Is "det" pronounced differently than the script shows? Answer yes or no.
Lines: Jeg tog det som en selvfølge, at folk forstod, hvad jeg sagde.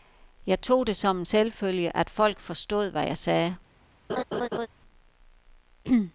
no